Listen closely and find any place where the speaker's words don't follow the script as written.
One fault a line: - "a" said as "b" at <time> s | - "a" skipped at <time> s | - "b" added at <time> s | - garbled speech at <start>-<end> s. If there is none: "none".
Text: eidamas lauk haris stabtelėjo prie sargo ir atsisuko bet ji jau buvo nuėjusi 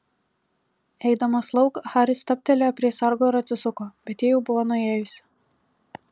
none